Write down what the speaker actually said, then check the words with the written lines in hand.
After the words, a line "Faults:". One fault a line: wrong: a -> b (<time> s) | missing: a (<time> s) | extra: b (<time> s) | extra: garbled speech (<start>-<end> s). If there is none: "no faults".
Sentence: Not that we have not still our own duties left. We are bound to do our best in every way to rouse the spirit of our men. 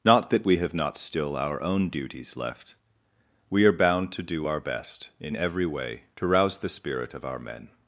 Not that we have not still our own duties left. We are bound to do our best in every way to rouse the spirit of our men.
Faults:
no faults